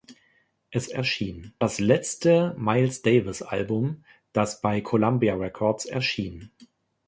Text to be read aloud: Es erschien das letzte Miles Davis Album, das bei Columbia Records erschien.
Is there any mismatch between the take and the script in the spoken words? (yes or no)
no